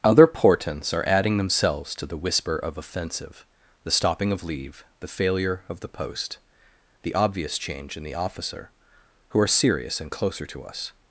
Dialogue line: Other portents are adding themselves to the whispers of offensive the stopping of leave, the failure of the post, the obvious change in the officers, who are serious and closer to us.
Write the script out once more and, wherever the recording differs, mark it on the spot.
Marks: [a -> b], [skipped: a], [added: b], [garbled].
Other portents are adding themselves to the [whispers -> whisper] of offensive the stopping of leave, the failure of the post, the obvious change in the [officers, -> officer] who are serious and closer to us.